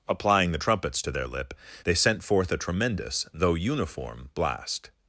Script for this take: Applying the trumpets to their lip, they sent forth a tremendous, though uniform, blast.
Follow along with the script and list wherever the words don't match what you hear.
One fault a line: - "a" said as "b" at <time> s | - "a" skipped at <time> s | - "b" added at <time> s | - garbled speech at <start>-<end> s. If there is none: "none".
none